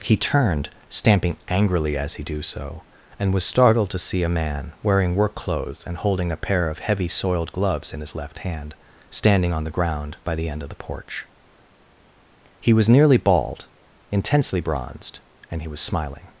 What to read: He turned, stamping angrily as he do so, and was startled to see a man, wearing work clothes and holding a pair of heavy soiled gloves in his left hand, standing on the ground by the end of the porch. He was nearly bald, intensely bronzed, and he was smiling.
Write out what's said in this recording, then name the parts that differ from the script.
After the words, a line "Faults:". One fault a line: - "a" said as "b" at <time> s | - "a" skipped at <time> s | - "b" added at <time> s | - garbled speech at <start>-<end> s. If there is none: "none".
He turned, stamping angrily as he do so, and was startled to see a man, wearing work clothes and holding a pair of heavy soiled gloves in his left hand, standing on the ground by the end of the porch. He was nearly bald, intensely bronzed, and he was smiling.
Faults:
none